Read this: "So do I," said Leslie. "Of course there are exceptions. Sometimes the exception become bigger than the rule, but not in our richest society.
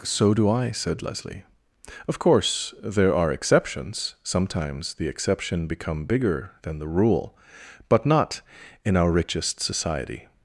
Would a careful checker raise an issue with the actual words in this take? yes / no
no